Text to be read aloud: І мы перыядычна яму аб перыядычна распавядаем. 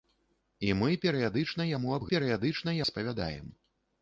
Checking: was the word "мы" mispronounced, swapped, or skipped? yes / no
no